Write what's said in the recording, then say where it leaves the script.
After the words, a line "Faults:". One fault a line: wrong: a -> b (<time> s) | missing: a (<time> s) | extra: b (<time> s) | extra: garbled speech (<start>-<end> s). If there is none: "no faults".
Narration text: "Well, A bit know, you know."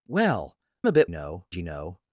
"Well, A bit know, you know."
Faults:
no faults